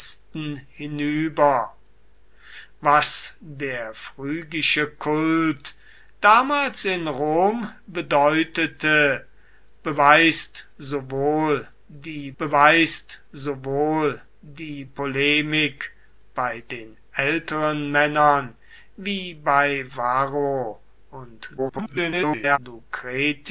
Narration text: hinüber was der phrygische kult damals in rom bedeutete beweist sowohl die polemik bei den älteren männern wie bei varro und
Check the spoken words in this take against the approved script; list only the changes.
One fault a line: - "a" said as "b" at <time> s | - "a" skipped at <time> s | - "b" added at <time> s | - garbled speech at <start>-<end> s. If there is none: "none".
- "beweist sowohl die" added at 12.4 s
- garbled speech at 21.6-22.6 s